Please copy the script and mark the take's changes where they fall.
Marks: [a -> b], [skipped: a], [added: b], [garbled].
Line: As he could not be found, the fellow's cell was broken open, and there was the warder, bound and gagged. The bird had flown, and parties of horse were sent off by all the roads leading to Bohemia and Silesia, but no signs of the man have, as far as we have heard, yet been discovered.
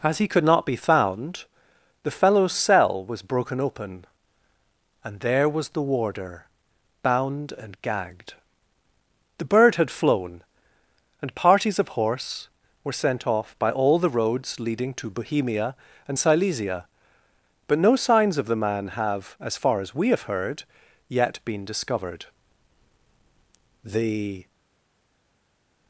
As he could not be found, the fellow's cell was broken open, and there was the warder, bound and gagged. The bird had flown, and parties of horse were sent off by all the roads leading to Bohemia and Silesia, but no signs of the man have, as far as we have heard, yet been discovered. [added: The]